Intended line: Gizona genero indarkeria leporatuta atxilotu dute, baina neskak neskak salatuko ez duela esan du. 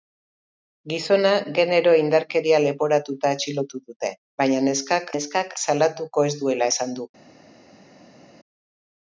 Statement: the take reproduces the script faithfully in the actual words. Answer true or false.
true